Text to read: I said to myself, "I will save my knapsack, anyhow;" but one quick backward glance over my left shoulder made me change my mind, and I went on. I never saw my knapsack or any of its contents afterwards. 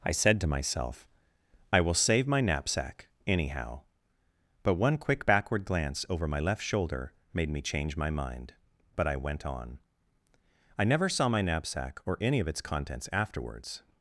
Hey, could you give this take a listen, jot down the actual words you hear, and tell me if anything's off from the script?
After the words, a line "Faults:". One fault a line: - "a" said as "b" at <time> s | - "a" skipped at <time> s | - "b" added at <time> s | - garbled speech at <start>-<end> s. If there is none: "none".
I said to myself, "I will save my knapsack, anyhow;" but one quick backward glance over my left shoulder made me change my mind, but I went on. I never saw my knapsack or any of its contents afterwards.
Faults:
- "and" said as "but" at 8.9 s